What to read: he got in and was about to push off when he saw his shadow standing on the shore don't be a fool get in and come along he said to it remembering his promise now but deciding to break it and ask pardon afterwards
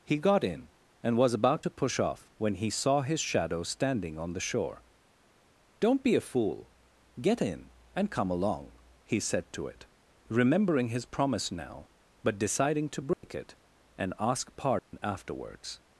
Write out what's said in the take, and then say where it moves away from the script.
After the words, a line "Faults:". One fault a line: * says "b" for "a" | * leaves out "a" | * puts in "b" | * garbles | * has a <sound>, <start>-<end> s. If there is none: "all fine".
he got in and was about to push off when he saw his shadow standing on the shore don't be a fool get in and come along he said to it remembering his promise now but deciding to break it and ask pardon afterwards
Faults:
* has a dropout, 13.1-13.2 s
* has a dropout, 14.8-14.9 s